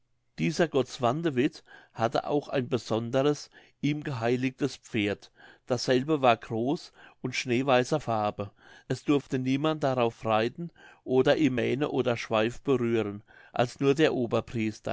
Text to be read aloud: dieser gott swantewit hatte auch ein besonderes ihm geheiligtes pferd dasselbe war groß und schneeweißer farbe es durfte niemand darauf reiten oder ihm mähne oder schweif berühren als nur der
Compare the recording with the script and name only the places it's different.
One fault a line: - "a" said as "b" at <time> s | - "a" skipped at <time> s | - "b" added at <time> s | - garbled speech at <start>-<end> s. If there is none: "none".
none